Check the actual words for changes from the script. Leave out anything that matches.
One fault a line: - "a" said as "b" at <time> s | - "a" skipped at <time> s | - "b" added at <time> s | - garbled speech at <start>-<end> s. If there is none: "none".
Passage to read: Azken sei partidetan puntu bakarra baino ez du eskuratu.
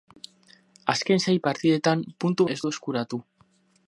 - "bakarra baino" skipped at 2.5 s